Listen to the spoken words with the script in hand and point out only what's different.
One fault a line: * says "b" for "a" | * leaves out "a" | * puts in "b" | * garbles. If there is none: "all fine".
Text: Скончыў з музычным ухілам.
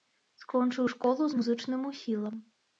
* puts in "школу"